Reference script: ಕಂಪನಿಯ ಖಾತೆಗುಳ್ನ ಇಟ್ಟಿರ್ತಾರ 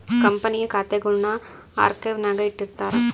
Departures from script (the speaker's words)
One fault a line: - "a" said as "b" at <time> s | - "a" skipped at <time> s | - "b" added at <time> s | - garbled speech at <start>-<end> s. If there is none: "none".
- "ಆರ್ಕೈವ್ನಾಗ" added at 1.8 s